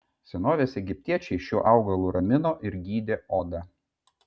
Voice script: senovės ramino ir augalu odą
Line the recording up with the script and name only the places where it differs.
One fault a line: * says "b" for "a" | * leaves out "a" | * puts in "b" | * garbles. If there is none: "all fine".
* puts in "egiptiečiai šiuo augalu"
* says "gydė" for "augalu"